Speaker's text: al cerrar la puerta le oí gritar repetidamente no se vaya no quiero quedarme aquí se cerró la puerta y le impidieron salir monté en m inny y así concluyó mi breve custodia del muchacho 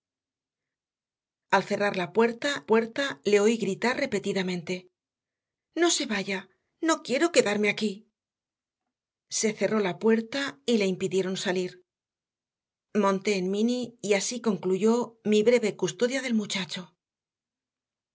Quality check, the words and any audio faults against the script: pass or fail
fail